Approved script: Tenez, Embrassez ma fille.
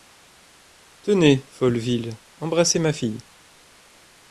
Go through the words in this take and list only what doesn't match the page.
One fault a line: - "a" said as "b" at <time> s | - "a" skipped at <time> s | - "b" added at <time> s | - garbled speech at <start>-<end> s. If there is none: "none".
- "Folleville" added at 1.5 s